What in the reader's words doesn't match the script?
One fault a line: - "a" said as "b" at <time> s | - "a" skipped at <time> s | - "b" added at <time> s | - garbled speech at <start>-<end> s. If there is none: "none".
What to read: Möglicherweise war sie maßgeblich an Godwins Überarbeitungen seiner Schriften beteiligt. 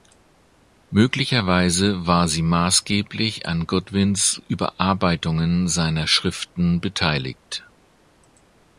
none